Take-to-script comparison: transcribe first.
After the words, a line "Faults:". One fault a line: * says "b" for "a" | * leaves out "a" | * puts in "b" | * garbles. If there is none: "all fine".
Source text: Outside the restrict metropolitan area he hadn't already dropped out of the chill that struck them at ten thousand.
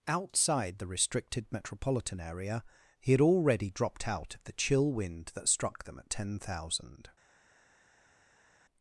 Outside the restricted metropolitan area he had already dropped out of the chill wind that struck them at ten thousand.
Faults:
* says "restricted" for "restrict"
* says "had" for "hadn't"
* puts in "wind"